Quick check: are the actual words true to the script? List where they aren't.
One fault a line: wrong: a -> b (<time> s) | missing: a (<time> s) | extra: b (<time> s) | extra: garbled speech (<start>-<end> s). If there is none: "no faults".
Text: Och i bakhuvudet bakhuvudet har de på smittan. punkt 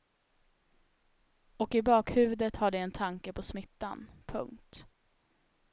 missing: bakhuvudet (2.6 s)
extra: en tanke (2.8 s)